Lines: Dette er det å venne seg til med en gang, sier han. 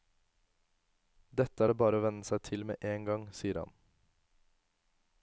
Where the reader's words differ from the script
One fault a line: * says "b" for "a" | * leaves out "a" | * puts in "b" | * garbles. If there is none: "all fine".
* puts in "bare"